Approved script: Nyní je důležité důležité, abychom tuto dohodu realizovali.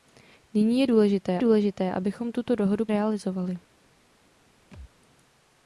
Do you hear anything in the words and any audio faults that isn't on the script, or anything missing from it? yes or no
yes